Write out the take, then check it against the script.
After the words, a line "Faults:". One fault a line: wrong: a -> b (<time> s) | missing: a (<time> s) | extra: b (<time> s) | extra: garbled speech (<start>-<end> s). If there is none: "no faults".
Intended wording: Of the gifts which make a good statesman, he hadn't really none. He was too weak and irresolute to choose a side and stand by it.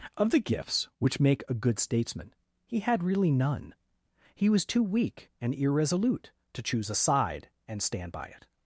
Of the gifts which make a good statesman, he had really none. He was too weak and irresolute to choose a side and stand by it.
Faults:
wrong: hadn't -> had (2.8 s)